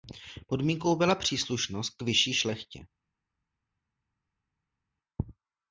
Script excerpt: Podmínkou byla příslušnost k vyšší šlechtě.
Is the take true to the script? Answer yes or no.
yes